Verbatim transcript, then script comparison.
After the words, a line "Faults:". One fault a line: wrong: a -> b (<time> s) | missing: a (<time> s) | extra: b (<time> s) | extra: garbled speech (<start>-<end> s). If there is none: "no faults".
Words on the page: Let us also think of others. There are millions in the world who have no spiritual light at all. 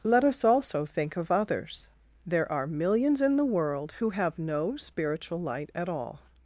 Let us also think of others. There are millions in the world who have no spiritual light at all.
Faults:
no faults